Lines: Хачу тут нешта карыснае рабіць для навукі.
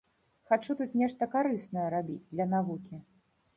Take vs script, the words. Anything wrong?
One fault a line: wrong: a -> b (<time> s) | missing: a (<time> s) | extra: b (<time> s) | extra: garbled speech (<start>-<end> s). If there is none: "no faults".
no faults